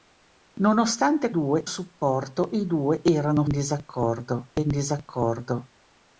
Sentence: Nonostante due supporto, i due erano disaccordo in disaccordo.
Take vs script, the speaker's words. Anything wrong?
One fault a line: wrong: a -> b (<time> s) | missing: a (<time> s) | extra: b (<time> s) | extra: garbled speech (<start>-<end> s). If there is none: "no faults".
no faults